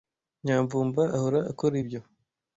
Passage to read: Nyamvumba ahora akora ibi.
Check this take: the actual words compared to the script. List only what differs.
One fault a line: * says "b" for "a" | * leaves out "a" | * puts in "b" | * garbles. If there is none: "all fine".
* says "ibyo" for "ibi"